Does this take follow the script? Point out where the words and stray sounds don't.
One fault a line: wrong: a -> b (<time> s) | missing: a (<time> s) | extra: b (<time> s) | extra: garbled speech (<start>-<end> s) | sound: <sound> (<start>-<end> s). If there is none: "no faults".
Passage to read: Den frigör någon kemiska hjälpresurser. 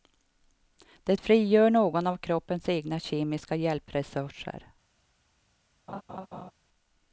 wrong: Den -> Det (1.0 s)
extra: av kroppens egna (2.1 s)
sound: laugh (5.9-6.5 s)